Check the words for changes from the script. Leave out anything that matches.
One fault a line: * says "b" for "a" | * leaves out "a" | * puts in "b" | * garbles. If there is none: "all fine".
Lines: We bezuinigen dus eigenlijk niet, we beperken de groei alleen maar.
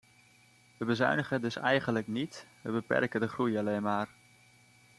all fine